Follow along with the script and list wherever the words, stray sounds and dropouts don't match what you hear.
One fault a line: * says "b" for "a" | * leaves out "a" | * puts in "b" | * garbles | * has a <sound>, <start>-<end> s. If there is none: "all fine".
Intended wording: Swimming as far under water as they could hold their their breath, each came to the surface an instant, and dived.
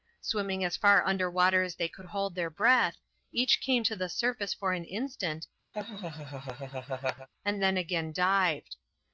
* leaves out "their"
* puts in "for"
* has a laugh, 5.7-7.3 s
* puts in "then again"